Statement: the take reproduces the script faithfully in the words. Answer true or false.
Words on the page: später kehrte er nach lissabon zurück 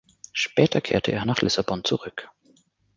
true